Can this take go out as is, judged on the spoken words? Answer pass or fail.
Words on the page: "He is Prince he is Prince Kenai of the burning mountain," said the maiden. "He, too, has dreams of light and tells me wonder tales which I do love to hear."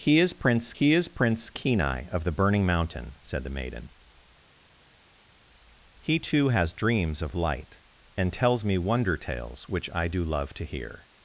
pass